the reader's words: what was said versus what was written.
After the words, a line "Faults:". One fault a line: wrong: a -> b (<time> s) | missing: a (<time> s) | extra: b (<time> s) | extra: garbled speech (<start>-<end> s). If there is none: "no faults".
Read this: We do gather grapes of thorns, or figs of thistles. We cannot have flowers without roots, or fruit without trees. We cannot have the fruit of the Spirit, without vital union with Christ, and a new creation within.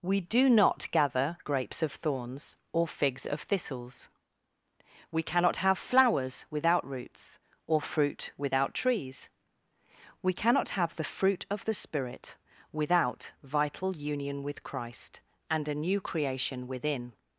We do not gather grapes of thorns, or figs of thistles. We cannot have flowers without roots, or fruit without trees. We cannot have the fruit of the Spirit, without vital union with Christ, and a new creation within.
Faults:
extra: not (0.5 s)